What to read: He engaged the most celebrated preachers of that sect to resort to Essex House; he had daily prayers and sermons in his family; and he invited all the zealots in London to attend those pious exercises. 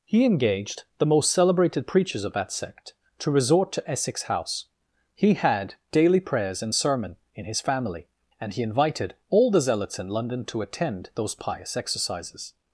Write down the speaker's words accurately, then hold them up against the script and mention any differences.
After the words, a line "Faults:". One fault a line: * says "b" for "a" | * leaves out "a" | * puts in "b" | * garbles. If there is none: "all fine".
He engaged the most celebrated preachers of that sect to resort to Essex House; he had daily prayers and sermon in his family; and he invited all the zealots in London to attend those pious exercises.
Faults:
* says "sermon" for "sermons"